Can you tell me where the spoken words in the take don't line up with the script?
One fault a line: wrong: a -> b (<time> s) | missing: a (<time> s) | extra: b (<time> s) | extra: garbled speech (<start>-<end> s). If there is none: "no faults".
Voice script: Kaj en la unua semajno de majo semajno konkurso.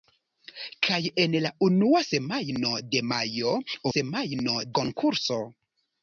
no faults